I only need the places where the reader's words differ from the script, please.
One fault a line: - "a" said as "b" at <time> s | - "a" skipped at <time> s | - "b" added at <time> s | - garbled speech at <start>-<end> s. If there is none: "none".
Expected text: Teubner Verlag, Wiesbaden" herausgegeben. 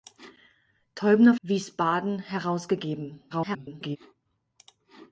- "Verlag" skipped at 1.4 s
- garbled speech at 3.3-4.0 s